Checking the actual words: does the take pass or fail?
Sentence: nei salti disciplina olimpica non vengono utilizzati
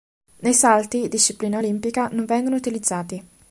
pass